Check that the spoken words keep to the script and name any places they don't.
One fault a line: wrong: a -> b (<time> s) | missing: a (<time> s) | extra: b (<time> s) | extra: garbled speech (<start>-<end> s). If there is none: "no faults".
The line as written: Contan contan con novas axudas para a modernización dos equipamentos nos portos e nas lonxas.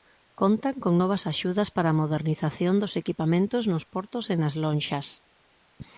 missing: contan (0.8 s)